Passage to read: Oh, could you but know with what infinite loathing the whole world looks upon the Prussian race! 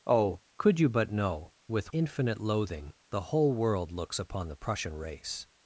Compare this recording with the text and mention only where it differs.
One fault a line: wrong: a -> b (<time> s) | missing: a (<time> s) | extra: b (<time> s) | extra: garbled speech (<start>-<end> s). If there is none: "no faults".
missing: what (1.9 s)